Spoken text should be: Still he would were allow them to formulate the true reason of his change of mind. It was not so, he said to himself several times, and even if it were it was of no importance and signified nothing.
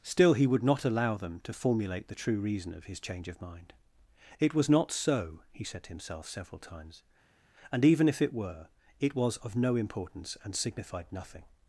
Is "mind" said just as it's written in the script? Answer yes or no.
yes